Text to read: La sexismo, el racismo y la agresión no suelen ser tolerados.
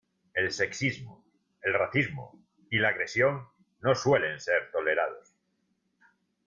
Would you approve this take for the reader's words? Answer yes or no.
no